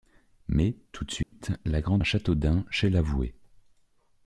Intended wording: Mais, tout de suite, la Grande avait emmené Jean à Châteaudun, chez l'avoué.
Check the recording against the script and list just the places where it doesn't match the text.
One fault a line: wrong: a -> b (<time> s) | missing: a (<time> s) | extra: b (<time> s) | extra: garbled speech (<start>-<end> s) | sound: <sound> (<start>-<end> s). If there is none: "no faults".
sound: dropout (1.2-1.3 s)
missing: avait emmené Jean (2.0 s)